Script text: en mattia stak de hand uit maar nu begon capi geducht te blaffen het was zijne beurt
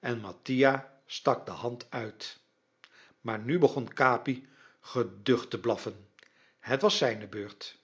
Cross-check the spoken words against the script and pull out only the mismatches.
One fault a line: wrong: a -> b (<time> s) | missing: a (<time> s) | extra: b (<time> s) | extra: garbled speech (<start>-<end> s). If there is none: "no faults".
no faults